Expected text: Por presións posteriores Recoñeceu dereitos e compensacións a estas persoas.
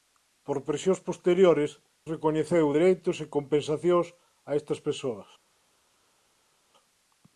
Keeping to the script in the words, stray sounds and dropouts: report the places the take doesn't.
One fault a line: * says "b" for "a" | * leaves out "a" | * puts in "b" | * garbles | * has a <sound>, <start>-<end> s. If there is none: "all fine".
all fine